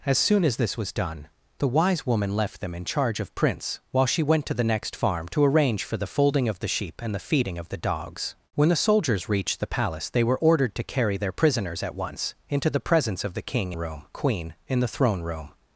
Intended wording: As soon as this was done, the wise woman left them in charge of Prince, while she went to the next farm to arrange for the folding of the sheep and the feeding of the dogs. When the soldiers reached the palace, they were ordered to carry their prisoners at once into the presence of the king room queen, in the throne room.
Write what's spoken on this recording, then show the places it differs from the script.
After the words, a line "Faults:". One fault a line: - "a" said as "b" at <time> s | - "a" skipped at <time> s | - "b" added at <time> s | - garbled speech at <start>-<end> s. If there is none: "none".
As soon as this was done, the wise woman left them in charge of Prince, while she went to the next farm to arrange for the folding of the sheep and the feeding of the dogs. When the soldiers reached the palace, they were ordered to carry their prisoners at once into the presence of the king room queen, in the throne room.
Faults:
none